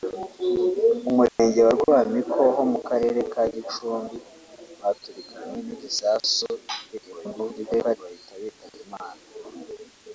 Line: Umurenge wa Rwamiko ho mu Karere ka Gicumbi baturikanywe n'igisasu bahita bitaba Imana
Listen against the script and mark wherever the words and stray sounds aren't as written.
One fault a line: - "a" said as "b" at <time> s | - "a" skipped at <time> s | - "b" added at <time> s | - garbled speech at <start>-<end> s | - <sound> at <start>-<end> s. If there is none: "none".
- dropout at 1.3-1.4 s
- garbled speech at 6.9-8.0 s